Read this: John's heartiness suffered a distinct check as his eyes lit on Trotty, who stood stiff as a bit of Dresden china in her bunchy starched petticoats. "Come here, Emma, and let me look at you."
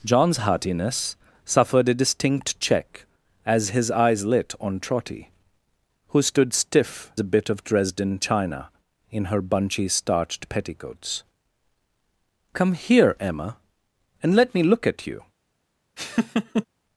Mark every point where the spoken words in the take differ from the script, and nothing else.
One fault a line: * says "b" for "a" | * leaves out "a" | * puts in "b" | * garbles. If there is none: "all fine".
* leaves out "as"